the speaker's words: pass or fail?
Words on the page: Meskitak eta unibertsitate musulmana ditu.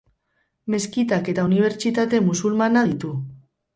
pass